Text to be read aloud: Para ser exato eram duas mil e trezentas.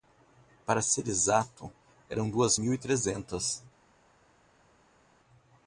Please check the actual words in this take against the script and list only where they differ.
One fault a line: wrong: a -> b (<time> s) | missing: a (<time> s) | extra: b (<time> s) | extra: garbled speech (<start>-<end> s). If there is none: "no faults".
no faults